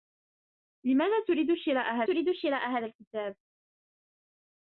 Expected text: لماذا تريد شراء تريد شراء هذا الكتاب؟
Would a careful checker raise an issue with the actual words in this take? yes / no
no